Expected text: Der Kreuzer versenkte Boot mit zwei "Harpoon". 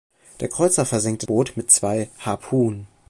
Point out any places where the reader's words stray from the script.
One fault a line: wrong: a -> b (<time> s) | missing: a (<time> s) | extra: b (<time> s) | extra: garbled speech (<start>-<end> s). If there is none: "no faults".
no faults